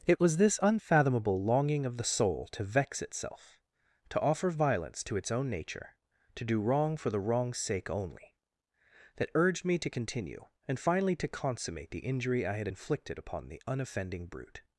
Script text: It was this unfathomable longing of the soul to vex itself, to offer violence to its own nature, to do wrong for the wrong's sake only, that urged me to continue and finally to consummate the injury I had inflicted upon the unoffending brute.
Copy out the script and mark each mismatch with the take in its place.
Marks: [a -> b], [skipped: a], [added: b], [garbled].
It was this unfathomable longing of the soul to vex itself, to offer violence to its own nature, to do wrong for the wrong's sake only, that urged me to continue and finally to consummate the injury I had inflicted upon the unoffending brute.